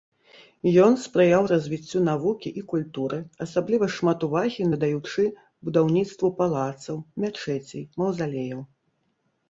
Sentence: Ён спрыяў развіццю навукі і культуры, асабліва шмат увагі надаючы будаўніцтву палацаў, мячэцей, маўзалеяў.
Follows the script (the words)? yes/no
yes